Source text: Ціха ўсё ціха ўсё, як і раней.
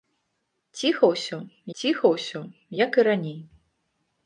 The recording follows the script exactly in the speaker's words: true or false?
true